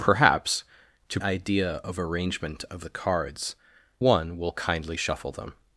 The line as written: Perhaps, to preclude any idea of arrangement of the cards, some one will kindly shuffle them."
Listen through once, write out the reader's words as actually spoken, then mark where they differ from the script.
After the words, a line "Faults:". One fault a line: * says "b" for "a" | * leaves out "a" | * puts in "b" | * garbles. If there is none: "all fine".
Perhaps, to idea of arrangement of the cards, one will kindly shuffle them."
Faults:
* leaves out "preclude any"
* leaves out "some"